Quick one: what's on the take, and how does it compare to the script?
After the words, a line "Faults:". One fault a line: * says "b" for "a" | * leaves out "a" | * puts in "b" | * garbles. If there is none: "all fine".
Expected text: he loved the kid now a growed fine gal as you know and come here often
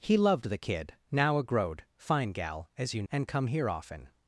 he loved the kid now a growed fine gal as you and come here often
Faults:
* leaves out "know"